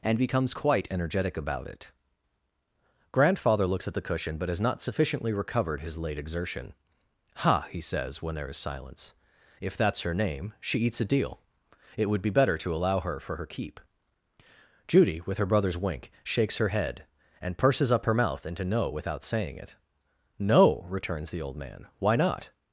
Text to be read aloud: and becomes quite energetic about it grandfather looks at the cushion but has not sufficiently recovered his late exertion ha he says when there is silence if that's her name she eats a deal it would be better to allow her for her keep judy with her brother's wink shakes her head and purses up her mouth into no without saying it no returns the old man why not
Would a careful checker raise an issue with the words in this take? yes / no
no